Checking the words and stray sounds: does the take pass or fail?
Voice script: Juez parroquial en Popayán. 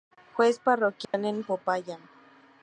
fail